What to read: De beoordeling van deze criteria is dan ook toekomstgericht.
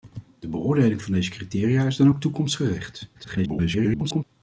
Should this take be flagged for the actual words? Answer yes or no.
yes